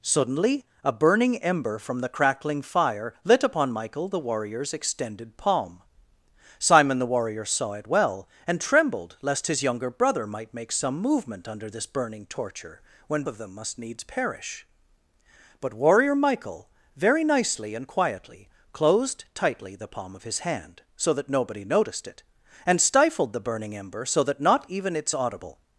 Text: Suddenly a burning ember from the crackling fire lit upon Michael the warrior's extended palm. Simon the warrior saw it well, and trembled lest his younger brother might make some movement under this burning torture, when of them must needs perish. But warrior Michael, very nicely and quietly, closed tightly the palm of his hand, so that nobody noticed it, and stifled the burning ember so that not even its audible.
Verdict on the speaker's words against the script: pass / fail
pass